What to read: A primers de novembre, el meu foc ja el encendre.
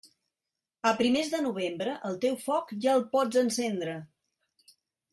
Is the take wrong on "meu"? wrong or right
wrong